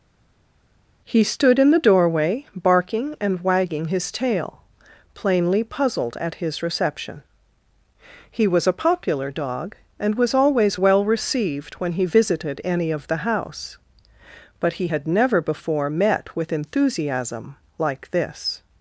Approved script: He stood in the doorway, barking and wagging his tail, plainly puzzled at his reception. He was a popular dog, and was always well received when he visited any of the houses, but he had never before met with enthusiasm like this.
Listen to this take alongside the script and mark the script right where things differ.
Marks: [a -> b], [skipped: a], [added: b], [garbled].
He stood in the doorway, barking and wagging his tail, plainly puzzled at his reception. He was a popular dog, and was always well received when he visited any of the [houses, -> house] but he had never before met with enthusiasm like this.